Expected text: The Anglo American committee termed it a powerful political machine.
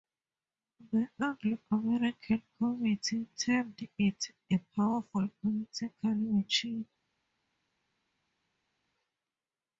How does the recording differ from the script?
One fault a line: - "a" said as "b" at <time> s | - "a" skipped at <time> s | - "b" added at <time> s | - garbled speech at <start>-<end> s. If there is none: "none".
none